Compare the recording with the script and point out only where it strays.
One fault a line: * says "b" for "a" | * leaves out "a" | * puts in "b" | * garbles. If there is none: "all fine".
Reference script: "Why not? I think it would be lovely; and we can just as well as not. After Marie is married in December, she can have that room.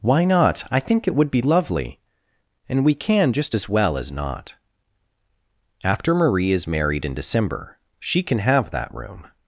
all fine